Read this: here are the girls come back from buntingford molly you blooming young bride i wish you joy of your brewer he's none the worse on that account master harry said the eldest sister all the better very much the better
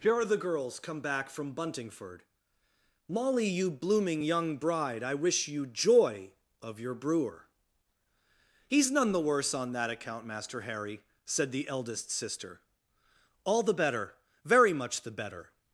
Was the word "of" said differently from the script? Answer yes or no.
no